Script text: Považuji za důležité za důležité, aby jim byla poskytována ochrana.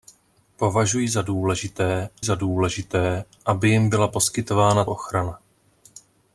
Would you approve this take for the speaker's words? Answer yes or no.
yes